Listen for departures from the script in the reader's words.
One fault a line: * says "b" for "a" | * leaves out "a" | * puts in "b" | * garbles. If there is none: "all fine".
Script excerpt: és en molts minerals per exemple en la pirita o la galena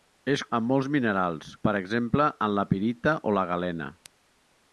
all fine